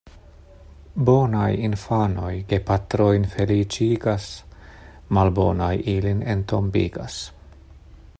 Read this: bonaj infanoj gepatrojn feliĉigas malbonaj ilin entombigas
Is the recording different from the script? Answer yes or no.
no